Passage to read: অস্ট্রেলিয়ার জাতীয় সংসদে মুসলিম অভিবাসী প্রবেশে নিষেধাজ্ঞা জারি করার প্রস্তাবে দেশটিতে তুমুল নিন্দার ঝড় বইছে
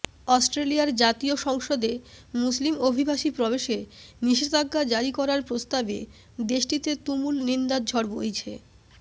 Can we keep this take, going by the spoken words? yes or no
yes